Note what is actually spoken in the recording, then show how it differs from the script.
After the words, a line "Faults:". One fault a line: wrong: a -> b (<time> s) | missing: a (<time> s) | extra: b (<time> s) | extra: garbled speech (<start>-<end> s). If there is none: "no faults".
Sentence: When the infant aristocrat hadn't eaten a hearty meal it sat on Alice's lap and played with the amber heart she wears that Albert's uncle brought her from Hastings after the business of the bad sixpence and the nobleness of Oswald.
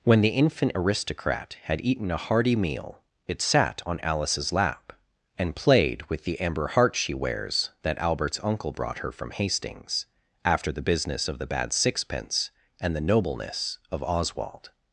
When the infant aristocrat had eaten a hearty meal it sat on Alice's lap and played with the amber heart she wears that Albert's uncle brought her from Hastings after the business of the bad sixpence and the nobleness of Oswald.
Faults:
wrong: hadn't -> had (1.6 s)